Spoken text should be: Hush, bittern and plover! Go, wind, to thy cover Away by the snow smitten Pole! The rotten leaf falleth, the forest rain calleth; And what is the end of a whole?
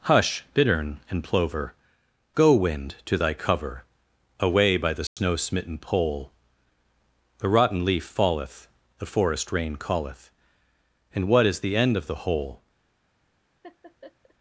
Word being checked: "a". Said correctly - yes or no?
no